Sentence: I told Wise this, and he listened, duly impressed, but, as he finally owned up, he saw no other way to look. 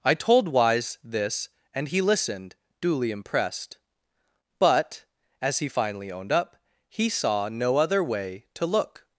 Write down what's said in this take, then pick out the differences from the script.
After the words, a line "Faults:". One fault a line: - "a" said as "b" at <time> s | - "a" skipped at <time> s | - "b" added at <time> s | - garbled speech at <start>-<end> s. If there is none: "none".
I told Wise this, and he listened, duly impressed, but, as he finally owned up, he saw no other way to look.
Faults:
none